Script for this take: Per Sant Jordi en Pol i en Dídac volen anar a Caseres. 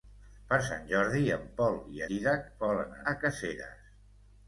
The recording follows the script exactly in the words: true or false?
false